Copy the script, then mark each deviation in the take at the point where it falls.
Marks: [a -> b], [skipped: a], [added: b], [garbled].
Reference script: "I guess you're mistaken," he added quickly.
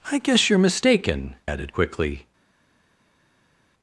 "I guess you're mistaken," [skipped: he] added quickly.